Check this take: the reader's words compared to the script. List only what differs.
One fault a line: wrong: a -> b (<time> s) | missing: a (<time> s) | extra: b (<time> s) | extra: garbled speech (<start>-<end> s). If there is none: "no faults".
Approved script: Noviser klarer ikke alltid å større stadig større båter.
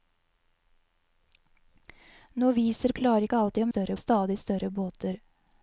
no faults